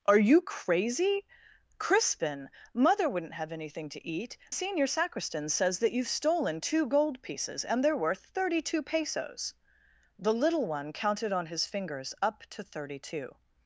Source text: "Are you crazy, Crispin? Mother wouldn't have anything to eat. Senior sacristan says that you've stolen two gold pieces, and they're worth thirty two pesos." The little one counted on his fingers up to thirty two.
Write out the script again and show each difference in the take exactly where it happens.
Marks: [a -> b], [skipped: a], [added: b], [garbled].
"Are you crazy, Crispin? Mother wouldn't have anything to eat. Senior sacristan says that you've stolen two gold pieces, and they're worth thirty two pesos." The little one counted on his fingers up to thirty two.